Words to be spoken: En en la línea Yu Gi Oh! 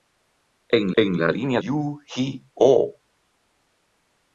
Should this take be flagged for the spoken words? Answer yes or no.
no